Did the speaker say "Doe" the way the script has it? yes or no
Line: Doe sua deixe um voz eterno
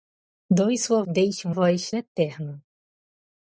yes